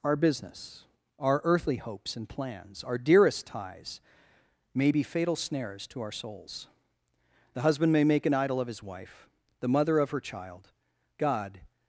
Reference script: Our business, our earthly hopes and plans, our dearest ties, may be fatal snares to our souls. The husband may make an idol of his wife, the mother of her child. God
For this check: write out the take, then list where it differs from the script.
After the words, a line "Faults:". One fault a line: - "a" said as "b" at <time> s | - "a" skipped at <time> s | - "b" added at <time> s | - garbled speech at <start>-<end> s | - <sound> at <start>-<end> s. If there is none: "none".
Our business, our earthly hopes and plans, our dearest ties, may be fatal snares to our souls. The husband may make an idol of his wife, the mother of her child. God
Faults:
none